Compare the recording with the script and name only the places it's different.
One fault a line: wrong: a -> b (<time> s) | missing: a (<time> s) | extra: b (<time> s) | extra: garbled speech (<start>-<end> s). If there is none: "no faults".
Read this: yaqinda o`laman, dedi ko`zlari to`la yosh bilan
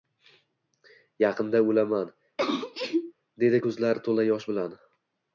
no faults